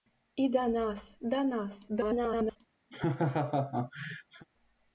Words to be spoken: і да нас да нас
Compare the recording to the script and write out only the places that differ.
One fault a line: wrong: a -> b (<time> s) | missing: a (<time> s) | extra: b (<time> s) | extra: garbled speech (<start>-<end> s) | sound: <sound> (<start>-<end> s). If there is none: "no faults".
extra: garbled speech (1.9-2.6 s)
sound: laugh (2.9-4.5 s)